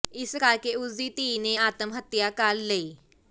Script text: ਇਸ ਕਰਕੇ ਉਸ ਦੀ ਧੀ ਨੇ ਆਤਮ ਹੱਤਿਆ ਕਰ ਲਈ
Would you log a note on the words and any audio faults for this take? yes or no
no